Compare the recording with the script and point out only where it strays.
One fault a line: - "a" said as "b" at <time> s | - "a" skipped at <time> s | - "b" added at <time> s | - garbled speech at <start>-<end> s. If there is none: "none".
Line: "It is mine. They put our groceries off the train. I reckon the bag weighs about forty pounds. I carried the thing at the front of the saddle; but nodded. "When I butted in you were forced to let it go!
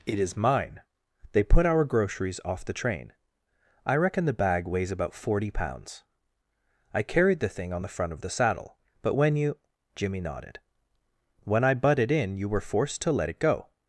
- "at" said as "on" at 7.7 s
- "when you Jimmy" added at 9.1 s